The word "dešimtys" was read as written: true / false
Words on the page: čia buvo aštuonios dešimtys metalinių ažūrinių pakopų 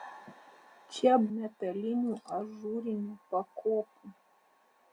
false